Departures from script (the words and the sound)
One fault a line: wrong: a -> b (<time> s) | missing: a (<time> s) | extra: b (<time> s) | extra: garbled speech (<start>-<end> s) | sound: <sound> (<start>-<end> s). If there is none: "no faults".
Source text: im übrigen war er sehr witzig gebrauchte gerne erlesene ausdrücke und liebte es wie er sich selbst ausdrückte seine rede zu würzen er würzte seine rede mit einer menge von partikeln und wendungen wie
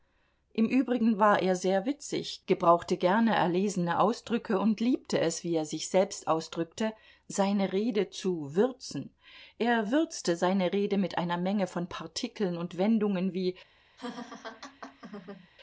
sound: laugh (14.0-15.5 s)